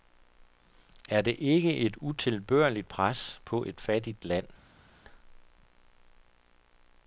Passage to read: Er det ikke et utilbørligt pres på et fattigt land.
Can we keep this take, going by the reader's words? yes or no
yes